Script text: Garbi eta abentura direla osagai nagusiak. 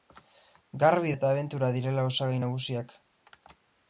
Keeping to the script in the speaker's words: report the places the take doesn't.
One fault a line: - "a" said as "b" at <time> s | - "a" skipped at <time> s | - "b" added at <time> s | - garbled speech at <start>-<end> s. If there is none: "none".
none